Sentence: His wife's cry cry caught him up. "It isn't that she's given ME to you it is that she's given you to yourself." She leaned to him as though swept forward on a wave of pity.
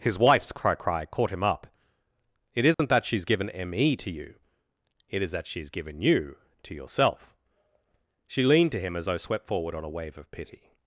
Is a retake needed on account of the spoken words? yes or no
no